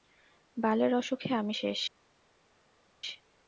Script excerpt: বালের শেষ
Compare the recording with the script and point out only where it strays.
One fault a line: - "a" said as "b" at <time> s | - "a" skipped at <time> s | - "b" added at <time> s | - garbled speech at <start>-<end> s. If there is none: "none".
- "অসুখে আমি" added at 0.9 s